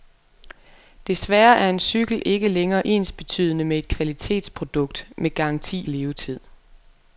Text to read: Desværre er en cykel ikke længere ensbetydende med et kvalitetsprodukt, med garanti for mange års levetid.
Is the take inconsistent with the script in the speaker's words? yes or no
yes